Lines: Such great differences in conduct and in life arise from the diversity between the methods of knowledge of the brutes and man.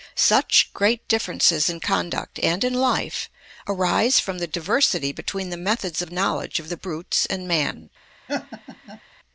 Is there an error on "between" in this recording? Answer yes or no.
no